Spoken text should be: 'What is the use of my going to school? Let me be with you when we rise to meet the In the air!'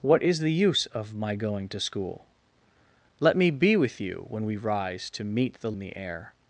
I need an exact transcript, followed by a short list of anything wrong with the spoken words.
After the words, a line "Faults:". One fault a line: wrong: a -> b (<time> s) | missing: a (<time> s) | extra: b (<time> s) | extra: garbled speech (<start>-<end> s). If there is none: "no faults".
'What is the use of my going to school? Let me be with you when we rise to meet the In the air!'
Faults:
no faults